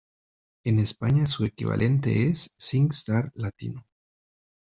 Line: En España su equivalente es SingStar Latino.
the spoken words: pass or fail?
pass